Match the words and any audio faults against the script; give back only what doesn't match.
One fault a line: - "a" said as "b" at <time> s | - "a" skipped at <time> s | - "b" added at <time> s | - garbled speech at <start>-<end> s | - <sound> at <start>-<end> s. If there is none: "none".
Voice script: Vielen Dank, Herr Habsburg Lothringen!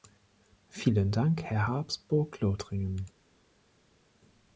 none